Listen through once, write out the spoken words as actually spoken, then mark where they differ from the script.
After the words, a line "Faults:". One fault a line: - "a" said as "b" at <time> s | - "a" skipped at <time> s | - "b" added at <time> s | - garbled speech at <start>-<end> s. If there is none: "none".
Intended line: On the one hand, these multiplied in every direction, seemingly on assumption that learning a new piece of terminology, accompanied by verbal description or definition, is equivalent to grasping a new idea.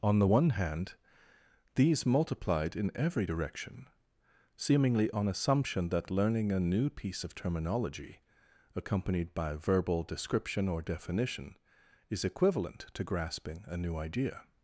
On the one hand, these multiplied in every direction, seemingly on assumption that learning a new piece of terminology, accompanied by verbal description or definition, is equivalent to grasping a new idea.
Faults:
none